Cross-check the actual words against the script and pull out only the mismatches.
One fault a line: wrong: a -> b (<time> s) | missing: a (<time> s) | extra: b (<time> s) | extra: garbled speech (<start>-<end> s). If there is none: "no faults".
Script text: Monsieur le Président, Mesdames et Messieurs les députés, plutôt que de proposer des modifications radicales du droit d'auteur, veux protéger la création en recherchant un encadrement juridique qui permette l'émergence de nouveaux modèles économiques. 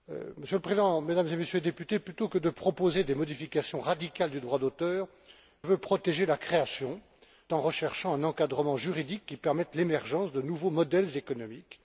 no faults